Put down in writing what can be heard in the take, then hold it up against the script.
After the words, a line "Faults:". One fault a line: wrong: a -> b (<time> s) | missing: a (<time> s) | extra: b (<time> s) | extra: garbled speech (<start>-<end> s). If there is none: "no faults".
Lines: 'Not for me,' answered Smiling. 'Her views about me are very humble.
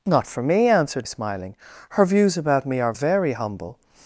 'Not for me,' answered Smiling. 'Her views about me are very humble.
Faults:
no faults